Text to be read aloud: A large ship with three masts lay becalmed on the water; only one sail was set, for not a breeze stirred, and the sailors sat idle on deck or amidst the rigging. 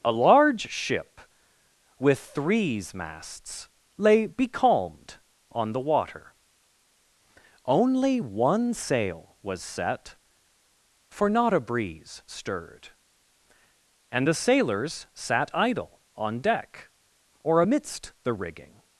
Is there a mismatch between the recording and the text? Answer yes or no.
yes